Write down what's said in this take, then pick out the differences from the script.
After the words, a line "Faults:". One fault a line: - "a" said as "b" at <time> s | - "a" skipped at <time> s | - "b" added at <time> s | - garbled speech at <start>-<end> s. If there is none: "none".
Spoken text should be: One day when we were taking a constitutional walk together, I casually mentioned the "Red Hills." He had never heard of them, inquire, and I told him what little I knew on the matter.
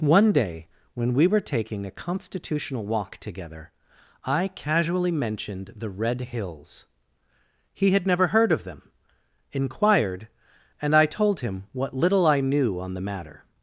One day when we were taking a constitutional walk together, I casually mentioned the "Red Hills." He had never heard of them, inquired, and I told him what little I knew on the matter.
Faults:
- "inquire" said as "inquired" at 9.5 s